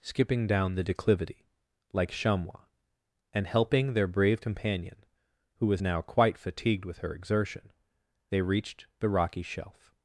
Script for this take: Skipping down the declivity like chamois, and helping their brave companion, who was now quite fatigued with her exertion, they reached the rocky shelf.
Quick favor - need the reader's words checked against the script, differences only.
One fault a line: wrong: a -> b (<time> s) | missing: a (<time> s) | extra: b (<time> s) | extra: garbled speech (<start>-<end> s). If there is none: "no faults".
no faults